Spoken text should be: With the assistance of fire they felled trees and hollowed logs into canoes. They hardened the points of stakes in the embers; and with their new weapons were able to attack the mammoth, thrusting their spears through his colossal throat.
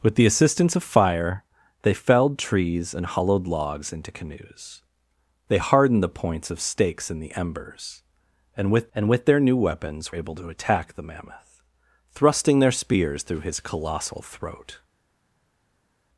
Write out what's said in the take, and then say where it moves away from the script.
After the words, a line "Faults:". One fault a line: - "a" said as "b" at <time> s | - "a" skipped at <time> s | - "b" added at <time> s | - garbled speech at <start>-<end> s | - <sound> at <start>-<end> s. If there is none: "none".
With the assistance of fire they felled trees and hollowed logs into canoes. They hardened the points of stakes in the embers; and with and with their new weapons able to attack the mammoth, thrusting their spears through his colossal throat.
Faults:
- "and with" added at 9.0 s
- "were" skipped at 10.1 s